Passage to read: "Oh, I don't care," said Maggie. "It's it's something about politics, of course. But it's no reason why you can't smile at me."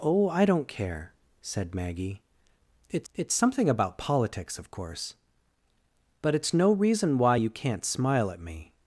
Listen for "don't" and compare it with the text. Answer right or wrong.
right